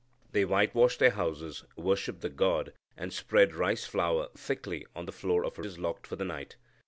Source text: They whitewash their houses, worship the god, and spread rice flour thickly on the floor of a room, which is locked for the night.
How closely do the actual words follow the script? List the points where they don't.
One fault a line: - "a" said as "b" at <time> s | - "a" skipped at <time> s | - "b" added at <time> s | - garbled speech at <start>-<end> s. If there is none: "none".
- "room which" skipped at 5.6 s